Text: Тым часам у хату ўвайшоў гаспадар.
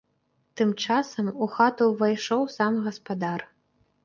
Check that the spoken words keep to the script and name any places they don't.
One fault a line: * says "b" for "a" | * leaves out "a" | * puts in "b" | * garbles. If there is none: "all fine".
* puts in "сам"